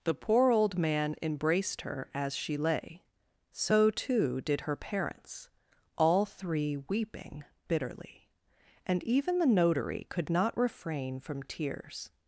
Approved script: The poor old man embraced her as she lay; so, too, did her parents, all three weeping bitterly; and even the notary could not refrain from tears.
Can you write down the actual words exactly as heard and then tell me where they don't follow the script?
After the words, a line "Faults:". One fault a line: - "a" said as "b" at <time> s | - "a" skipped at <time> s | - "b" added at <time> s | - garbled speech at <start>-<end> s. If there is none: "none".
The poor old man embraced her as she lay; so, too, did her parents, all three weeping bitterly; and even the notary could not refrain from tears.
Faults:
none